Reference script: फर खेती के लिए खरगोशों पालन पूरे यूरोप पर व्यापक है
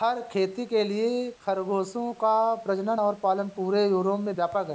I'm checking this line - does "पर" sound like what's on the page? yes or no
no